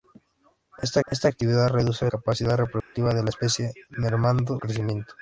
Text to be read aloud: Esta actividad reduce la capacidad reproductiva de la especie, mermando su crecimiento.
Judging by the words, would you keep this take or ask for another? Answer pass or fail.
fail